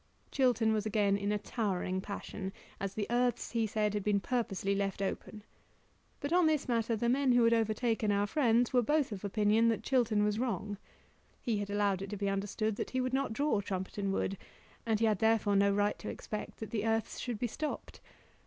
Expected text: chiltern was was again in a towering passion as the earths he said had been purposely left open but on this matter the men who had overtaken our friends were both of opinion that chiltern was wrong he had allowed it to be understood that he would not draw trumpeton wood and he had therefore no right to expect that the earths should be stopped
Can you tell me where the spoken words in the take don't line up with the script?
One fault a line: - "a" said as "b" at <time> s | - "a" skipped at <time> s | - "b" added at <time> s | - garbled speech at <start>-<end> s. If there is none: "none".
- "was" skipped at 0.9 s